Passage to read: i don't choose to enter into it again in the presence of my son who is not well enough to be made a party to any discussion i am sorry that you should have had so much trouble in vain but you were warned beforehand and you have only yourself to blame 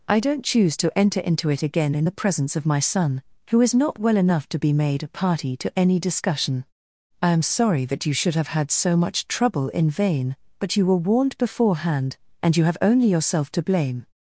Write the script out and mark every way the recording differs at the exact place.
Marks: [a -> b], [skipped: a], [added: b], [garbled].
i don't choose to enter into it again in the presence of my son who is not well enough to be made a party to any discussion i am sorry that you should have had so much trouble in vain but you were warned beforehand and you have only yourself to blame